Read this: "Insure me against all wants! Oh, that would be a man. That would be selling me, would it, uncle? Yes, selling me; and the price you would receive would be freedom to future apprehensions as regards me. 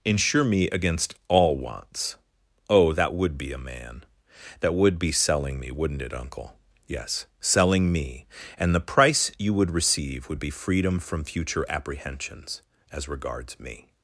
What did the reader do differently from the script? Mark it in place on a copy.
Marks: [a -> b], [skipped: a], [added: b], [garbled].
"Insure me against all wants! Oh, that would be a man. That would be selling me, [would -> wouldn't] it, uncle? Yes, selling me; and the price you would receive would be freedom [to -> from] future apprehensions as regards me.